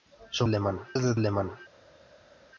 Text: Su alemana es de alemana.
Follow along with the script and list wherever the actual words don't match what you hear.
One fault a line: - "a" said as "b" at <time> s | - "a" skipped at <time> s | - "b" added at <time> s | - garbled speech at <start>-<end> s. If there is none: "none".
none